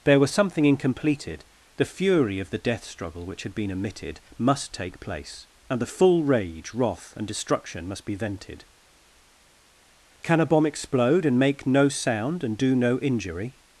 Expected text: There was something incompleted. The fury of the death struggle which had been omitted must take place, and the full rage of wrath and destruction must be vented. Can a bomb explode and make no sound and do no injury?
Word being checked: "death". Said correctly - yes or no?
yes